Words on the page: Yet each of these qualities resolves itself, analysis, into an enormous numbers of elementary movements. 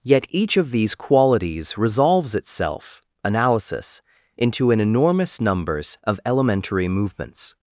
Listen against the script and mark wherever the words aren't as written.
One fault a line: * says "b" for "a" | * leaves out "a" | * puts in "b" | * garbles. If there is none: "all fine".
all fine